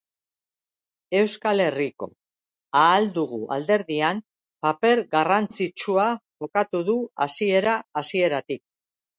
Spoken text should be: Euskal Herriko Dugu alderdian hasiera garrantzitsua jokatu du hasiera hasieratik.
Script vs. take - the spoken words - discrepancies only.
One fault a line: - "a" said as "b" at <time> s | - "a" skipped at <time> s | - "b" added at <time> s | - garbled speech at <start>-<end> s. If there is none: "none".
- "Ahal" added at 2.8 s
- "hasiera" said as "paper" at 4.7 s